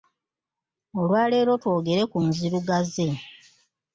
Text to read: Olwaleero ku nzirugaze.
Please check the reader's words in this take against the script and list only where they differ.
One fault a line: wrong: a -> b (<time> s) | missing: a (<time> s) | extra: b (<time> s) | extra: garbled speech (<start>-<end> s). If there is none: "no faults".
extra: twogere (1.6 s)